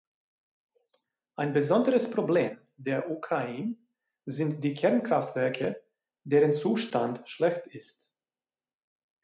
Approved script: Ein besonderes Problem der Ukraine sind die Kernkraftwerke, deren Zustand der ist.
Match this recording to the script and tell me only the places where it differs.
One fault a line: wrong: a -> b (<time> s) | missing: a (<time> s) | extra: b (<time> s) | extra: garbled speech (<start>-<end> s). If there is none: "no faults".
wrong: der -> schlecht (7.3 s)